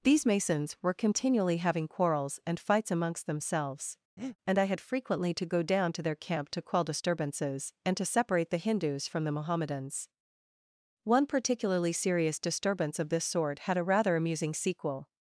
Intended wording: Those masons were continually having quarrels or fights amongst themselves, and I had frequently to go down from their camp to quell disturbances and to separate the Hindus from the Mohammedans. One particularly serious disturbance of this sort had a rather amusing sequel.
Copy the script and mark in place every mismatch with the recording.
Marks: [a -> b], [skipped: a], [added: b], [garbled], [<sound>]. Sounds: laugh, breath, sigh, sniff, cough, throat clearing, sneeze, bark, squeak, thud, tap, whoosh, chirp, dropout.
[Those -> These] masons were continually having quarrels [or -> and] fights amongst themselves, [breath] and I had frequently to go down [from -> to] their camp to quell disturbances and to separate the Hindus from the Mohammedans. One particularly serious disturbance of this sort had a rather amusing sequel.